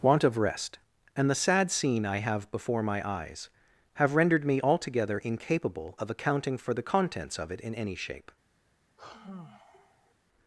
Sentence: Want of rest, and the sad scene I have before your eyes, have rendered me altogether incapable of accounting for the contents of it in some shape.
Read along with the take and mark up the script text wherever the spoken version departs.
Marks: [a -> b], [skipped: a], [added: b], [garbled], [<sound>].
Want of rest, and the sad scene I have before [your -> my] eyes, have rendered me altogether incapable of accounting for the contents of it in [some -> any] shape. [sigh]